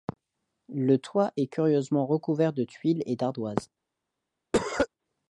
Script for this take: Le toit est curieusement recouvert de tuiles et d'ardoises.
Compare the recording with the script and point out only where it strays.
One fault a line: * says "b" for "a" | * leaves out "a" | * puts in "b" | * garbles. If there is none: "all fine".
all fine